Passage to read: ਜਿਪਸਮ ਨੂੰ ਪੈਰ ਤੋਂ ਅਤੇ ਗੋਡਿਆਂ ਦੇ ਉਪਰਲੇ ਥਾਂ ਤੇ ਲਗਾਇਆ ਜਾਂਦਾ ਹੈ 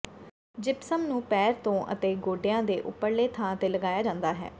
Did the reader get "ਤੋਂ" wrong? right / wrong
right